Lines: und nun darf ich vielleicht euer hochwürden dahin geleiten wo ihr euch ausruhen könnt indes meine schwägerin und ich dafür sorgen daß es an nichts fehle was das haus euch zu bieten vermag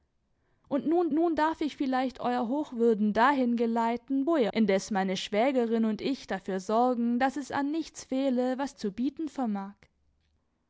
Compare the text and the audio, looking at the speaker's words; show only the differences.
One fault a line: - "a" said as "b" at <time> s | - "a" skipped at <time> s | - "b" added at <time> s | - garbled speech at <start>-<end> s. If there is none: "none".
- "nun" added at 1.1 s
- "euch ausruhen könnt" skipped at 4.5 s
- "das haus euch" skipped at 8.7 s